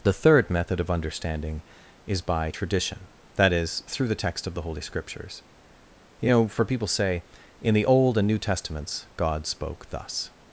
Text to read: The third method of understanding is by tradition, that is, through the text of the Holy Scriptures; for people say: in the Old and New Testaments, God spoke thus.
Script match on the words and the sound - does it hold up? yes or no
no